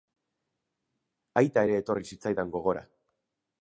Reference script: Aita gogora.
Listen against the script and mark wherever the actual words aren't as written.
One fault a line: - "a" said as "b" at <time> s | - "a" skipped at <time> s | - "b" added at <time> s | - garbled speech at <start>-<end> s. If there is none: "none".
- "ere etorri zitzaidan" added at 1.7 s